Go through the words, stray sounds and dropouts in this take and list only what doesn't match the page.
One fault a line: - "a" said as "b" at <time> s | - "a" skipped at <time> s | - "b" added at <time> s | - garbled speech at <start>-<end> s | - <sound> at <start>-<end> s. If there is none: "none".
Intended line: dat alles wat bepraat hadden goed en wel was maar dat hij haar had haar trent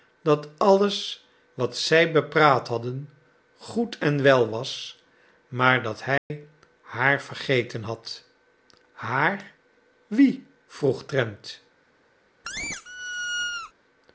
- "zij" added at 1.8 s
- dropout at 6.2-6.3 s
- "vergeten" added at 7.2 s
- "wie vroeg" added at 10.1 s
- squeak at 12.4-13.7 s